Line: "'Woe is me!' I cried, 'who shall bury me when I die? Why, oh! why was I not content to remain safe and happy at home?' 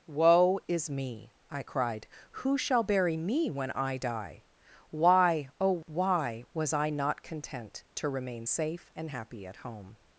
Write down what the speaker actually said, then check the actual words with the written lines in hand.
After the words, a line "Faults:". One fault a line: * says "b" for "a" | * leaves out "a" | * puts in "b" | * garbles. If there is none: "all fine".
"'Woe is me!' I cried, 'who shall bury me when I die? Why, oh! why was I not content to remain safe and happy at home?'
Faults:
all fine